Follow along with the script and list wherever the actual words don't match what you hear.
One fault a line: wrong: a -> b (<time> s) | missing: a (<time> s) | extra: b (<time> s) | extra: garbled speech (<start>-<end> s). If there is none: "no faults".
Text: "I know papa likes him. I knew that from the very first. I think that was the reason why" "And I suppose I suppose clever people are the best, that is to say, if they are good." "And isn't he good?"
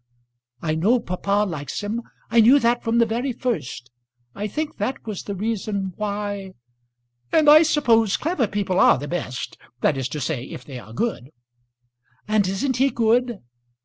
missing: I suppose (8.2 s)